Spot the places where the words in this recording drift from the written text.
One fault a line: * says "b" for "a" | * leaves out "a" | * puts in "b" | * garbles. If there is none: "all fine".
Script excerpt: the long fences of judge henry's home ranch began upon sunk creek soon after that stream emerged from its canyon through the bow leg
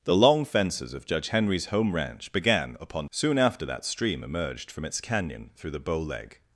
* leaves out "sunk creek"